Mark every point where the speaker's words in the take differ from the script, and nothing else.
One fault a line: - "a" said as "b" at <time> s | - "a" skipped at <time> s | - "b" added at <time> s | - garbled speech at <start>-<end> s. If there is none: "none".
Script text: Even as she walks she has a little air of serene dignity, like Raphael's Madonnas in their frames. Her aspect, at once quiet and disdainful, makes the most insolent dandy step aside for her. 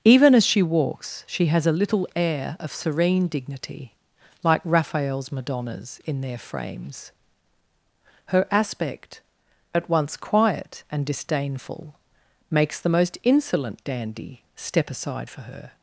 none